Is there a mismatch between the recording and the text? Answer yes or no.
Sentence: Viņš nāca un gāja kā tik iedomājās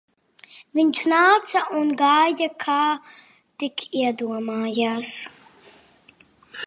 no